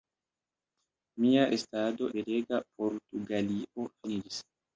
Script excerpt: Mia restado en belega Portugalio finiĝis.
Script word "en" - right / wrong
wrong